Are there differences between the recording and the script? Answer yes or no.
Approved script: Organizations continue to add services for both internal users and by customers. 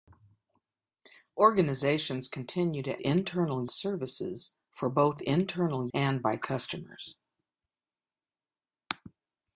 yes